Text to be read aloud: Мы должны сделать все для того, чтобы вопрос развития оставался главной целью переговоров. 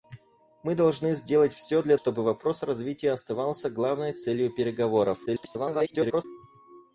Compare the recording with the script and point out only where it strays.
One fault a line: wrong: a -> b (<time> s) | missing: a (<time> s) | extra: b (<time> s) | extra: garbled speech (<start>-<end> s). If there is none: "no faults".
missing: того (1.9 s)
extra: garbled speech (5.3-6.2 s)